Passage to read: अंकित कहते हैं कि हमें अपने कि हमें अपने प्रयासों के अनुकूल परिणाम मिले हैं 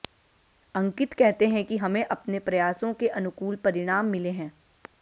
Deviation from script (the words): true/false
true